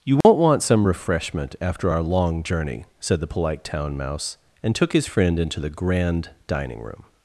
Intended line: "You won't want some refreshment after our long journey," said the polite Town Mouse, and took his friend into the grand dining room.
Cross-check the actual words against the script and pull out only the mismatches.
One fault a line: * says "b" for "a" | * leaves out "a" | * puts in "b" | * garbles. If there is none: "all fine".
all fine